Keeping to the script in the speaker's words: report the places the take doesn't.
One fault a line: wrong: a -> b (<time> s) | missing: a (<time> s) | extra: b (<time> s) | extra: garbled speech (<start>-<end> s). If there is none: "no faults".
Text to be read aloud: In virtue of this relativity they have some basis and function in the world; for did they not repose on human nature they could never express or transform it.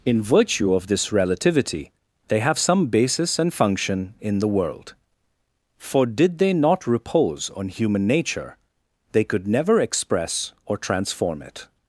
no faults